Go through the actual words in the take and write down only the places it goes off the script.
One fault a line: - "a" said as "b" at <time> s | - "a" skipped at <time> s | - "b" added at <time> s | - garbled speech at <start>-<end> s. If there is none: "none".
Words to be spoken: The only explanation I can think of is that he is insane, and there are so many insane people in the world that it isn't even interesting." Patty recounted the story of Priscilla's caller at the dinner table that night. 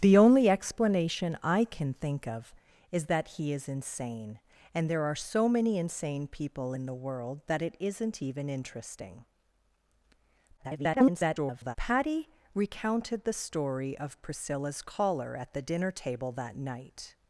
- garbled speech at 10.6-11.8 s